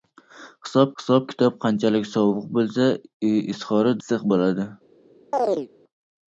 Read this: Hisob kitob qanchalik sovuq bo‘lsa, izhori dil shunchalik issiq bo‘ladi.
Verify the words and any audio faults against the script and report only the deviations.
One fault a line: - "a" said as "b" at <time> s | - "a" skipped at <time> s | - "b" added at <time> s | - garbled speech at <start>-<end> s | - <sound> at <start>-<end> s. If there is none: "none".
- "hisob" added at 1.0 s
- "dil shunchalik" skipped at 3.9 s
- chirp at 5.3-5.7 s